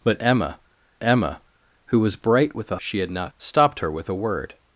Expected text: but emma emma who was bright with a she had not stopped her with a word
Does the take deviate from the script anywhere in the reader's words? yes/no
no